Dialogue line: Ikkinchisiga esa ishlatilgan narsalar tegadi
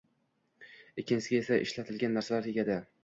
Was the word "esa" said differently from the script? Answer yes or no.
no